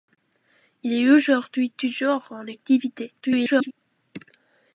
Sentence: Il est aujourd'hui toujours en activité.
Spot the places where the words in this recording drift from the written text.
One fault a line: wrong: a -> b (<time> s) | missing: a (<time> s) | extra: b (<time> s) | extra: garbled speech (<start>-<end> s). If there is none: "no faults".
extra: garbled speech (3.2-3.7 s)